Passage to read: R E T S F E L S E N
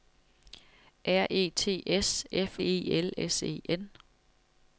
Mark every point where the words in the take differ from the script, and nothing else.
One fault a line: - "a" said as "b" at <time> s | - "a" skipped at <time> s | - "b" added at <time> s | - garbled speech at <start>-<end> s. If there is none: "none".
none